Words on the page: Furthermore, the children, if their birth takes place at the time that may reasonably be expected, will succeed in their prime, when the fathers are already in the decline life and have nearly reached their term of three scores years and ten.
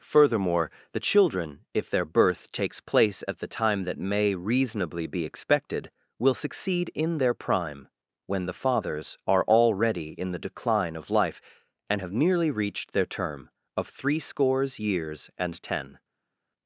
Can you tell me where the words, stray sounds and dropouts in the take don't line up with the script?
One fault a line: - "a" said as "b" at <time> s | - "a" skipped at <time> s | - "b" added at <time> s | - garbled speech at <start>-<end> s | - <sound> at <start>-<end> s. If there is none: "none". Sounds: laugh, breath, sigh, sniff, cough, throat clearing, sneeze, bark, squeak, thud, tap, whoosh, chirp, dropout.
- "of" added at 11.0 s